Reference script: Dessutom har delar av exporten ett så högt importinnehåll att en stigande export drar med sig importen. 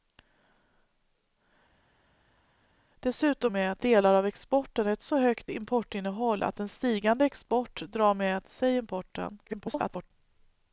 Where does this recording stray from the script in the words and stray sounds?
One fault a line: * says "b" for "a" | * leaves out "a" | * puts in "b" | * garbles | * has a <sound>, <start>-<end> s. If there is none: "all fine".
* says "med" for "har"
* garbles